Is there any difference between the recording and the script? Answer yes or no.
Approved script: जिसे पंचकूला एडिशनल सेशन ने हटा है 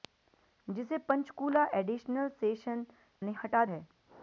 no